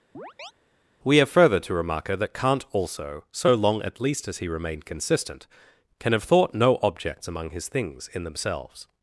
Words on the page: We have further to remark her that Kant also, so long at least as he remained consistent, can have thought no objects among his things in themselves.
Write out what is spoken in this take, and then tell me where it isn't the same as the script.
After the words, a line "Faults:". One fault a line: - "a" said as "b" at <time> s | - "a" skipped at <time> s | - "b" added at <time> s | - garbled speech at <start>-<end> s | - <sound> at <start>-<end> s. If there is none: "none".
We have further to remark her that Kant also, so long at least as he remained consistent, can have thought no objects among his things in themselves.
Faults:
- chirp at 0.1-0.5 s